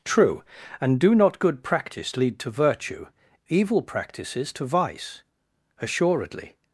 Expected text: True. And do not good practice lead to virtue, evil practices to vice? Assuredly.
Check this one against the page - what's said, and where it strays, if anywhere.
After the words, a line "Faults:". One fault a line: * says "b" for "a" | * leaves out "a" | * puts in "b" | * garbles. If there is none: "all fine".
True. And do not good practice lead to virtue, evil practices to vice? Assuredly.
Faults:
all fine